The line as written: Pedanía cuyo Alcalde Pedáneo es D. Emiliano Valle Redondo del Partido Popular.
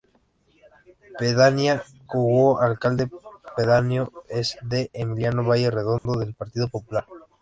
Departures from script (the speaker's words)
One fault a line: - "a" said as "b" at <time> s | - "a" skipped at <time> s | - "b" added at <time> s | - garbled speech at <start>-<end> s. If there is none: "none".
none